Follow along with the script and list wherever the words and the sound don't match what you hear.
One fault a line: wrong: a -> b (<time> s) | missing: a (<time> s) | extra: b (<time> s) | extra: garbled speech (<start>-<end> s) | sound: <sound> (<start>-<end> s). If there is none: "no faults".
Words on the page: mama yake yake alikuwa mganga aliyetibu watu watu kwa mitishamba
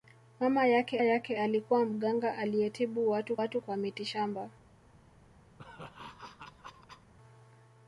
sound: laugh (5.6-7.1 s)